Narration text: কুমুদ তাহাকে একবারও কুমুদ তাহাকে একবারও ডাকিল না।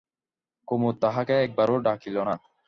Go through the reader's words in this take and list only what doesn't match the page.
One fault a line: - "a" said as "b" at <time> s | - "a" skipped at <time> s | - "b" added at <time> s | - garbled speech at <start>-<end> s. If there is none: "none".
- "কুমুদ তাহাকে একবারও" skipped at 1.8 s